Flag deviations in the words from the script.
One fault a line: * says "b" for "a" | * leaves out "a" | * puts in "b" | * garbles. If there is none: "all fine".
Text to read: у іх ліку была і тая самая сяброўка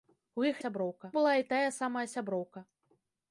* says "сяброўка" for "ліку"